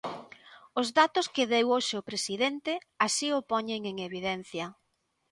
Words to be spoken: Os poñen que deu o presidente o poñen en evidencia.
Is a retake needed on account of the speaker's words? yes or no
yes